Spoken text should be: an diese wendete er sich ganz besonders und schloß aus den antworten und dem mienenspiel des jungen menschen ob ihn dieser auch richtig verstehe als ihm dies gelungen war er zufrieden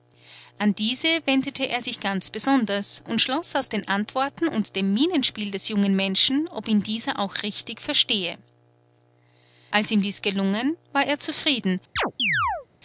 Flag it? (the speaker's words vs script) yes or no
no